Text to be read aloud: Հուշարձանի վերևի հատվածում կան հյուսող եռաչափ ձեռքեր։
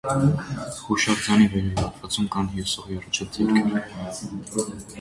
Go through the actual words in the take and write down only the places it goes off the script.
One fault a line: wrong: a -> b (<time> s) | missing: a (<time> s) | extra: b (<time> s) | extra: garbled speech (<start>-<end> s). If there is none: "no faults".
no faults